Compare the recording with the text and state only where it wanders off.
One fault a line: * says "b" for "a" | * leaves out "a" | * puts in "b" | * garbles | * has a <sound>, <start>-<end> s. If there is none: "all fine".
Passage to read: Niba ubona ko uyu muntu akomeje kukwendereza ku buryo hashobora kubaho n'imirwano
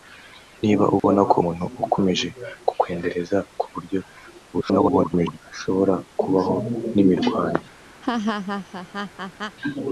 * has a dropout, 1.0-1.0 s
* leaves out "uyu"
* garbles
* has a laugh, 8.0-9.6 s